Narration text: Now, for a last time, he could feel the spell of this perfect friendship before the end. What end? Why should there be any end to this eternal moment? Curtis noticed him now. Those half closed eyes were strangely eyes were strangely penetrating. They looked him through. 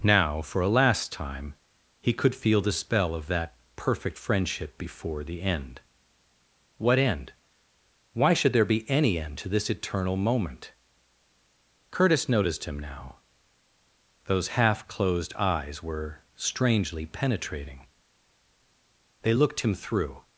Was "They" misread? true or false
false